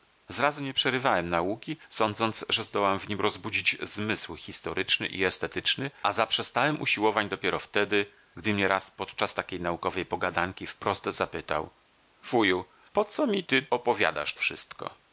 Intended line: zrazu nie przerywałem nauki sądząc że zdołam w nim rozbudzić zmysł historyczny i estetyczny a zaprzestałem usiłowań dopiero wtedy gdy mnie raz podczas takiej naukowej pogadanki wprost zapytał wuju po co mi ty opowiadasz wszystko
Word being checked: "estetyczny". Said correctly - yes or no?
yes